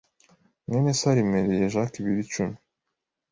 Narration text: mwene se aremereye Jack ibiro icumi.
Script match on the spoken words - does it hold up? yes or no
yes